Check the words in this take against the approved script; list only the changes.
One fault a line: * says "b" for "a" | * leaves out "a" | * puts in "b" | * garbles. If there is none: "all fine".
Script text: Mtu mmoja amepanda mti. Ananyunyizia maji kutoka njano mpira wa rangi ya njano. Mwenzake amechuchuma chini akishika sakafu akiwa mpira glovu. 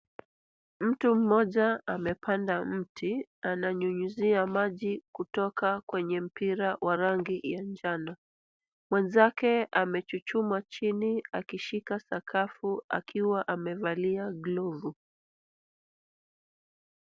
* says "kwenye" for "njano"
* says "amevalia" for "mpira"